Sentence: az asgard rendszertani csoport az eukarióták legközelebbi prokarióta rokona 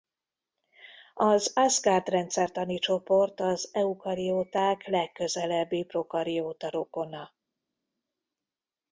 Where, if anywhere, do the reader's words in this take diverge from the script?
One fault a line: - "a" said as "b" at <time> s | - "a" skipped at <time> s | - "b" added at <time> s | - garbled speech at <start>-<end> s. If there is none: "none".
none